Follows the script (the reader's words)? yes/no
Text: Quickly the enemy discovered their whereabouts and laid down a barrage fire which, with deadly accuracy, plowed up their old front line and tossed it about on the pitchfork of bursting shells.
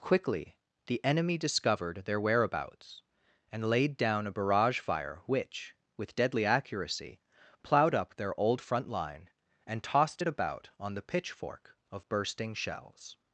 yes